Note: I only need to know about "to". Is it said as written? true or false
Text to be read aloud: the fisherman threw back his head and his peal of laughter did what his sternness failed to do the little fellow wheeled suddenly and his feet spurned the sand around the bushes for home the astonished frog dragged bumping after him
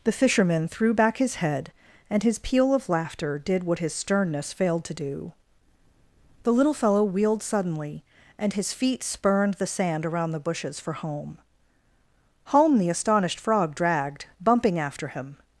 true